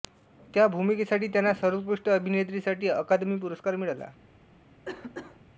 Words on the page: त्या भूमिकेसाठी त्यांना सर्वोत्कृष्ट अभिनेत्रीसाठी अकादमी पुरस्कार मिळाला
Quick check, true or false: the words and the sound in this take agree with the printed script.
false